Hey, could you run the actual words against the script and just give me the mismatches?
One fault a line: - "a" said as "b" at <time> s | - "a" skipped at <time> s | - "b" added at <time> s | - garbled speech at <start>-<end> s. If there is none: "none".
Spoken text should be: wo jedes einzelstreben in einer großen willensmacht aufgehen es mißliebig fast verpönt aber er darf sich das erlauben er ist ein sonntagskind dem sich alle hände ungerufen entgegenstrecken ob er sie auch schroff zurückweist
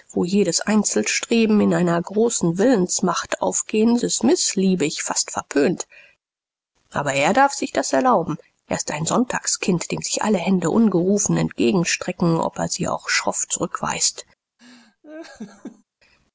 none